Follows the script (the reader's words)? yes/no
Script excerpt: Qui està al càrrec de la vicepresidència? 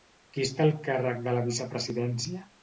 yes